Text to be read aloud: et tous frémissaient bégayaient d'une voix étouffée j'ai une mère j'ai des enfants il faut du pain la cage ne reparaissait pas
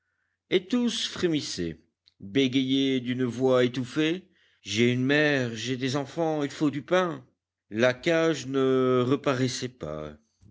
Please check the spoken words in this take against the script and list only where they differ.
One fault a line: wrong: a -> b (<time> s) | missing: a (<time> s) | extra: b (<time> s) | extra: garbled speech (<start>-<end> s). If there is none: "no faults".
no faults